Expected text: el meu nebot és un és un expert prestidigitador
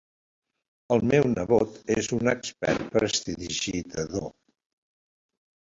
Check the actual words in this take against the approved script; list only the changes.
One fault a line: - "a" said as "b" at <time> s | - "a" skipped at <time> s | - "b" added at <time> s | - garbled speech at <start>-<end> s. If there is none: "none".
- "és un" skipped at 2.3 s